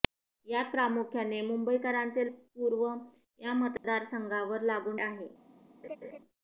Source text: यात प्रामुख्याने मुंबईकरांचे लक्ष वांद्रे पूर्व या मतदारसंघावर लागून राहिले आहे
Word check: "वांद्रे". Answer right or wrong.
wrong